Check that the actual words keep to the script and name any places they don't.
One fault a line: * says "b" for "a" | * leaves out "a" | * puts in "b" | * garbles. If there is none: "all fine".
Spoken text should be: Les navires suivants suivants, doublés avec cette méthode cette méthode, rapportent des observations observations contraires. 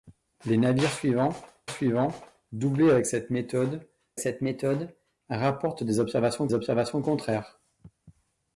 all fine